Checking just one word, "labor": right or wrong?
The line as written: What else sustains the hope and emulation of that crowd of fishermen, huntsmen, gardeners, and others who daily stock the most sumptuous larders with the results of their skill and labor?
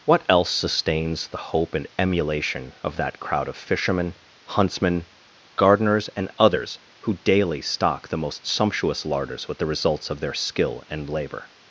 right